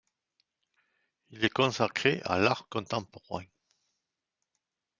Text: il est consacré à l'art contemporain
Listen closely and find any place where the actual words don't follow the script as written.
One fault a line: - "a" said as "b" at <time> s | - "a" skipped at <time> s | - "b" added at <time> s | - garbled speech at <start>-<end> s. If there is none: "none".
none